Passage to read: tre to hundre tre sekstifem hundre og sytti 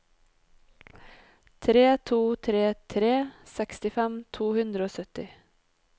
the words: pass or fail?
fail